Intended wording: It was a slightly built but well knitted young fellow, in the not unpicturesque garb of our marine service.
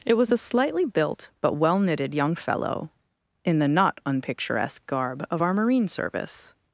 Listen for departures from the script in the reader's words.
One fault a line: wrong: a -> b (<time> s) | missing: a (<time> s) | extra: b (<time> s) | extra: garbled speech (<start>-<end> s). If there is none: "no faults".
no faults